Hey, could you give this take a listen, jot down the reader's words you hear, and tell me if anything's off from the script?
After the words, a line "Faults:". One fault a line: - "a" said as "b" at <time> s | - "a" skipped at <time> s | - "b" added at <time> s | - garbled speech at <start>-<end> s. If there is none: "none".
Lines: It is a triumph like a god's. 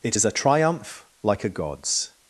It is a triumph like a god's.
Faults:
none